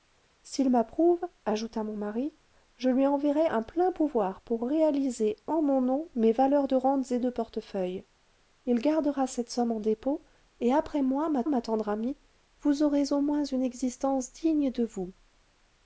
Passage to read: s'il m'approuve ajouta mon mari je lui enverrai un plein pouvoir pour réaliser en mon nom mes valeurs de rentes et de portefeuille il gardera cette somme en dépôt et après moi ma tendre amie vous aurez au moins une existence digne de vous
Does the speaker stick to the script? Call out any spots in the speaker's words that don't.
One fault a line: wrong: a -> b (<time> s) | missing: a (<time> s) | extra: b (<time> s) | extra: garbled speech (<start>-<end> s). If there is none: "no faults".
extra: ma (11.5 s)